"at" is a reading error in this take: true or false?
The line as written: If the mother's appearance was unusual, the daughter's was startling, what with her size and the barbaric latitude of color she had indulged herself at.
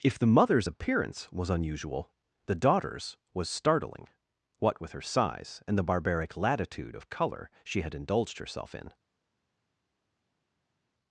true